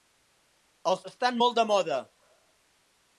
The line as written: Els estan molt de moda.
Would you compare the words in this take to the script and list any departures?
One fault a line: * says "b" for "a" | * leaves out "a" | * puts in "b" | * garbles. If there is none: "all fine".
all fine